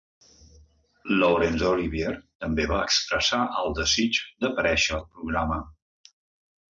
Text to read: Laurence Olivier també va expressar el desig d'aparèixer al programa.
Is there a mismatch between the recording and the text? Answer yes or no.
no